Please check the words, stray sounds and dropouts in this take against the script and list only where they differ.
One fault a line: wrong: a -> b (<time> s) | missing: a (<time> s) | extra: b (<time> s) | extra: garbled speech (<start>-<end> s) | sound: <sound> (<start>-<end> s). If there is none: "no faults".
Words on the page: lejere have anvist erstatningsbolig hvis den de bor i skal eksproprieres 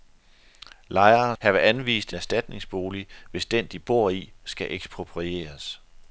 no faults